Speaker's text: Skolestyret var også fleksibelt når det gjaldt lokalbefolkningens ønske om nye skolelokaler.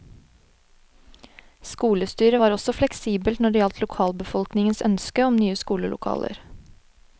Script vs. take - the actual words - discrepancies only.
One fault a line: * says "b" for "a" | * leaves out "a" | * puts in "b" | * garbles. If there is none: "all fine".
all fine